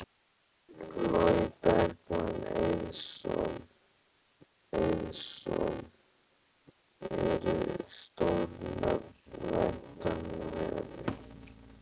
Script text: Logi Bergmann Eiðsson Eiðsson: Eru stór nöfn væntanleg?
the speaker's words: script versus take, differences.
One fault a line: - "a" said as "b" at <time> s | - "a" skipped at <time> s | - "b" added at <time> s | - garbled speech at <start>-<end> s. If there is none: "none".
none